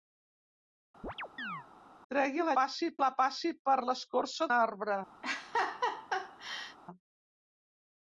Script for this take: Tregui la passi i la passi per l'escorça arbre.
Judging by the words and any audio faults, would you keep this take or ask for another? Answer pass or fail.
fail